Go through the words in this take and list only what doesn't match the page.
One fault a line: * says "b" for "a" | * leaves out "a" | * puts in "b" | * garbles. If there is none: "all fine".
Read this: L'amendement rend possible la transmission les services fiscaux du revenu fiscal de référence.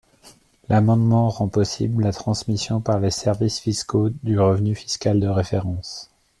* puts in "par"